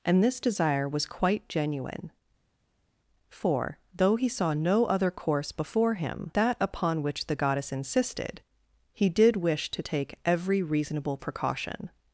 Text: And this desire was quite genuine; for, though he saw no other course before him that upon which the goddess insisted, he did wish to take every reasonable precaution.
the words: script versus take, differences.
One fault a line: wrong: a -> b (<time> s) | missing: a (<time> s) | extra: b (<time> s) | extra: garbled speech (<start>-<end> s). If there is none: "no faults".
no faults